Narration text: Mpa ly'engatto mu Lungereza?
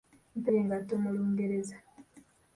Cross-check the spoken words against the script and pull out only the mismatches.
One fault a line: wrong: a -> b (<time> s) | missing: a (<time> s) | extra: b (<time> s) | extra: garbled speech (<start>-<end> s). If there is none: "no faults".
no faults